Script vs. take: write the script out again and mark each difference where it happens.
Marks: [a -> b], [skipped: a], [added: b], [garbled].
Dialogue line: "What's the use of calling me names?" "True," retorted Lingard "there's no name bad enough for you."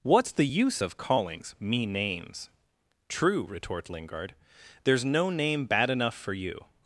"What's the use of [calling -> callings] me names?" "True," [retorted -> retort] Lingard "there's no name bad enough for you."